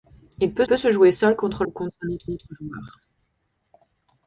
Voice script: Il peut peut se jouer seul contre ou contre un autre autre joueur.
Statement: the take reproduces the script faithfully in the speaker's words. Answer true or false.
true